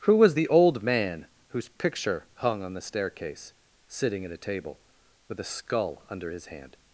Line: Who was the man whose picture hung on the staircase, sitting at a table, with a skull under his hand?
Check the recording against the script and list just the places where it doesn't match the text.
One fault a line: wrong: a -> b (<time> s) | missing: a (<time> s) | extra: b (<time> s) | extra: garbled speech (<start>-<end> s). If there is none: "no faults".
extra: old (0.5 s)